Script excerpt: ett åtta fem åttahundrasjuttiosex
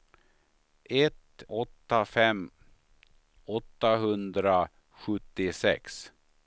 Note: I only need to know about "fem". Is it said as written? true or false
true